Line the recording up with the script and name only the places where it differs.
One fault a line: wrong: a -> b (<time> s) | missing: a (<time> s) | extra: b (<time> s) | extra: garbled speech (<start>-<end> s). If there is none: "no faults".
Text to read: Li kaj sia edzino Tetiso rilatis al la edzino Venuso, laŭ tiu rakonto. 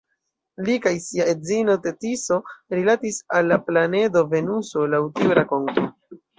wrong: edzino -> planedo (3.7 s)